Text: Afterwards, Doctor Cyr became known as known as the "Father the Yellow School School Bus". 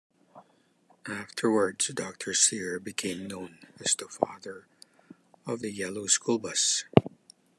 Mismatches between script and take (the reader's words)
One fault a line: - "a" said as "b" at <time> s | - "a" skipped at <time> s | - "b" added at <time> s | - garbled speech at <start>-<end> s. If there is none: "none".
- "known as" skipped at 3.9 s
- "of" added at 5.5 s
- "School" skipped at 6.4 s